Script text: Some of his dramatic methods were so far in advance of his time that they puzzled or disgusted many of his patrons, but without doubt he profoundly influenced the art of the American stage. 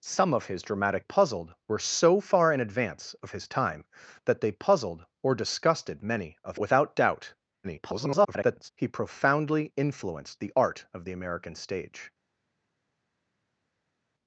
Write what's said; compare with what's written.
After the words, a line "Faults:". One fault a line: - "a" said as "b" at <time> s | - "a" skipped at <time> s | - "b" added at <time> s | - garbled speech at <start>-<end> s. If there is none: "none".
Some of his dramatic puzzled were so far in advance of his time that they puzzled or disgusted many of without doubt [garbled] he profoundly influenced the art of the American stage.
Faults:
- "methods" said as "puzzled" at 1.0 s
- "his patrons but" skipped at 6.6 s
- garbled speech at 7.6-8.7 s